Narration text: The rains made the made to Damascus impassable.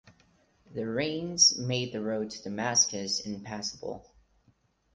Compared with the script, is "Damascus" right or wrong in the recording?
right